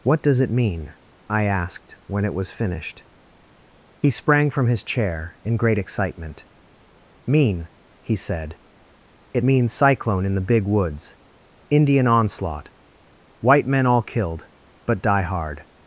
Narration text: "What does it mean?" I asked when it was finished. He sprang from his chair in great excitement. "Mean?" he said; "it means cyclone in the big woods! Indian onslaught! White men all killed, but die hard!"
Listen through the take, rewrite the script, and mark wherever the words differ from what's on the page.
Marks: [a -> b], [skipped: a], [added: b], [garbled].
"What does it mean?" I asked when it was finished. He sprang from his chair in great excitement. "Mean?" he said; "it means cyclone in the big woods! Indian onslaught! White men all killed, but die hard!"